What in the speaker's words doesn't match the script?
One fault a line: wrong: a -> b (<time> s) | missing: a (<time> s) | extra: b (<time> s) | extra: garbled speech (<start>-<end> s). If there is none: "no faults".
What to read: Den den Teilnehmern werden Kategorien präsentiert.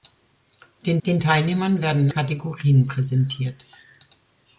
no faults